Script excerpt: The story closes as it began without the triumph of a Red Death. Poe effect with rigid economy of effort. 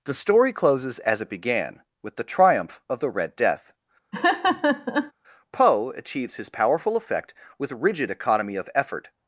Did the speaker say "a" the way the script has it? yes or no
no